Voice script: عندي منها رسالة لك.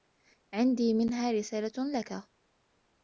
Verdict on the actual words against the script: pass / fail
pass